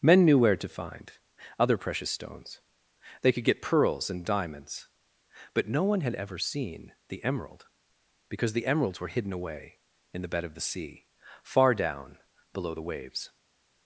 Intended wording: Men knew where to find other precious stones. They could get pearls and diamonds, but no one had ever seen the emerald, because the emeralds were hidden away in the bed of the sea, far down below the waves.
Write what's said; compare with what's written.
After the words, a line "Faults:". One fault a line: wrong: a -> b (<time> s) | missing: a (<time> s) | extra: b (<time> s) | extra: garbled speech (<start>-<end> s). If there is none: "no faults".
Men knew where to find other precious stones. They could get pearls and diamonds, but no one had ever seen the emerald, because the emeralds were hidden away in the bed of the sea, far down below the waves.
Faults:
no faults